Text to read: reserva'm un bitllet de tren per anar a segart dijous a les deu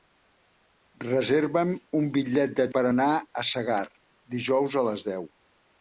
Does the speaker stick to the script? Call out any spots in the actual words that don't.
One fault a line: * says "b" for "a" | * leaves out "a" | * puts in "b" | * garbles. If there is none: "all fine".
* leaves out "tren"